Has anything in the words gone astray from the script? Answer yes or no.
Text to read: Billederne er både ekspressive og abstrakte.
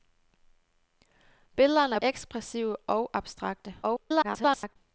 yes